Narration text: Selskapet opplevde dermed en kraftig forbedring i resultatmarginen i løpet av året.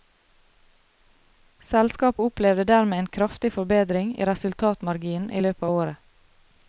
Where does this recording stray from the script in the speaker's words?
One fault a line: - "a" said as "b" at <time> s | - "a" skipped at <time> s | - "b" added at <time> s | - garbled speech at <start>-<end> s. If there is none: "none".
none